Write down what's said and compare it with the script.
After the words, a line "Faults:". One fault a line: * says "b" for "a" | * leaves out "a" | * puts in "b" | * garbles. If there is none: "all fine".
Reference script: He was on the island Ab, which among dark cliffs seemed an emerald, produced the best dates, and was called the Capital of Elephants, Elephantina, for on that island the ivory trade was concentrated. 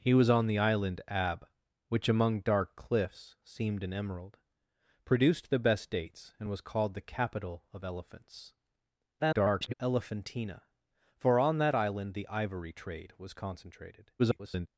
He was on the island Ab, which among dark cliffs seemed an emerald, produced the best dates, and was called the Capital of Elephants, [garbled] Elephantina, for on that island the ivory trade was concentrated. [garbled]
Faults:
* garbles
* garbles